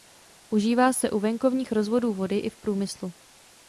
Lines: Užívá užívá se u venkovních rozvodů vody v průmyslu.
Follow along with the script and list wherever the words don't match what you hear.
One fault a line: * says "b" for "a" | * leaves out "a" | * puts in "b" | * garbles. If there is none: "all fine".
* leaves out "užívá"
* puts in "i"